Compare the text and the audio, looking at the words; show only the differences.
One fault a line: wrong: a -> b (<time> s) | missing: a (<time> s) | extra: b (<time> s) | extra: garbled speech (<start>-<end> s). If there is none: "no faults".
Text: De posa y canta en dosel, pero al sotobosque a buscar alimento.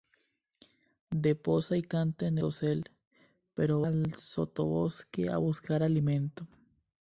no faults